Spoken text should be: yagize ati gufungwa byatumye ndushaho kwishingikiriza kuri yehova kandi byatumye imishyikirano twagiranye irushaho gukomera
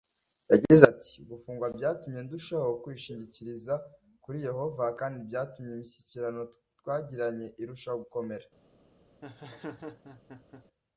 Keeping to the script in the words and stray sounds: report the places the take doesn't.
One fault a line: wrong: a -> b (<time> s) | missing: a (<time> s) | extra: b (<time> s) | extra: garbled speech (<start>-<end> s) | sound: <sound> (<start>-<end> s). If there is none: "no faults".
sound: laugh (9.2-10.6 s)